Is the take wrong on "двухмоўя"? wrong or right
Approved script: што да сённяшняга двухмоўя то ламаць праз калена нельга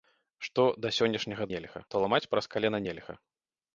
wrong